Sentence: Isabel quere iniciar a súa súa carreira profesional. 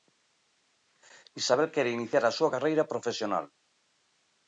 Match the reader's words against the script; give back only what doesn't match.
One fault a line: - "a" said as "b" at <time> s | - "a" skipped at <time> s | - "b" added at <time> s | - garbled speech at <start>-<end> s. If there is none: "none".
- "súa" skipped at 2.5 s